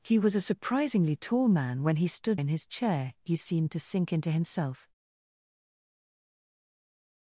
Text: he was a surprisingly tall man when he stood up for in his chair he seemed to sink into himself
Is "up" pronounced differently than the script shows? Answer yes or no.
yes